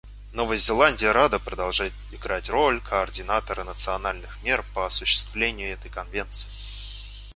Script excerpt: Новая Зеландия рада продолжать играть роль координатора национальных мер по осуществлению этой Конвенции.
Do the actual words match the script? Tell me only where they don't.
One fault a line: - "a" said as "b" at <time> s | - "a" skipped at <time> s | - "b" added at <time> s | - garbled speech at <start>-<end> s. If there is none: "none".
none